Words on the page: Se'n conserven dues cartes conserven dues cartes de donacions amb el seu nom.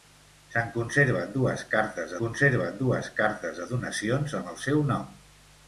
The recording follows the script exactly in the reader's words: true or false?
true